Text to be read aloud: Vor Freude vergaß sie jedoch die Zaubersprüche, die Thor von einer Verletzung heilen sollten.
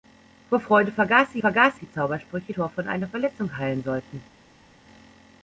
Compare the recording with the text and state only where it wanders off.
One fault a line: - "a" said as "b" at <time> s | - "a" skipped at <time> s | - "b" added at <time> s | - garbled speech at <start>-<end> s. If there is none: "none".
- "jedoch" said as "vergaß" at 1.4 s
- "die" skipped at 2.5 s